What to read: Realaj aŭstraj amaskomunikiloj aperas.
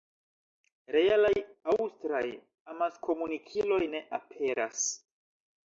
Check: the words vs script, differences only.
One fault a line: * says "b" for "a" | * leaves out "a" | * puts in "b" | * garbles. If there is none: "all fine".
* puts in "ne"